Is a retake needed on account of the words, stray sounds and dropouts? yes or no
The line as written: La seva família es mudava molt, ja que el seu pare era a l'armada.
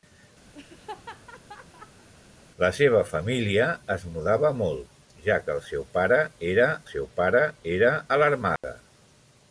yes